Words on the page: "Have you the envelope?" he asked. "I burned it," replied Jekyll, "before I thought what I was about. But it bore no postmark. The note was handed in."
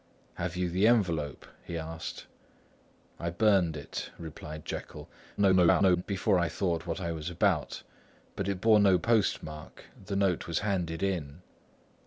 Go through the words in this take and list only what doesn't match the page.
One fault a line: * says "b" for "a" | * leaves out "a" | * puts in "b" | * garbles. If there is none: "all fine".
* garbles